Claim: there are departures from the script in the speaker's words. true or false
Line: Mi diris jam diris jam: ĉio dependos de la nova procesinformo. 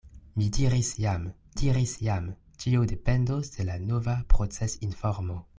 false